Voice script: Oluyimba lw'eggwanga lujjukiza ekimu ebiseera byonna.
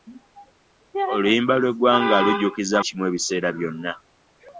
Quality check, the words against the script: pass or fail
pass